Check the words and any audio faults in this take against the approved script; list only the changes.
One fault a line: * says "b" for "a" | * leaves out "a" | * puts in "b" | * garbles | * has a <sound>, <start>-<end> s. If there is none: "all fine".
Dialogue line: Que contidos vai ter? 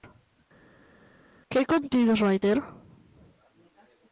all fine